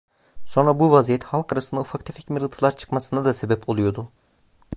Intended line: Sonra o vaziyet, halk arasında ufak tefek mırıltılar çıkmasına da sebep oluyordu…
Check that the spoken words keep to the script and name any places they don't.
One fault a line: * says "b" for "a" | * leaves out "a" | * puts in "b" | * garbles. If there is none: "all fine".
* says "bu" for "o"